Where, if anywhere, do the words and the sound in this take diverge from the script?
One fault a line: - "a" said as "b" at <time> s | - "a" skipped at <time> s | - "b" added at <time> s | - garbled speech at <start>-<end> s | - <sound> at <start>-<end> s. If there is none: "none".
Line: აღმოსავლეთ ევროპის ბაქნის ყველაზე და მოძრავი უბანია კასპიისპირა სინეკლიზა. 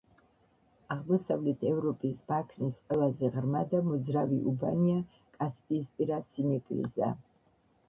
- "ღრმა" added at 3.4 s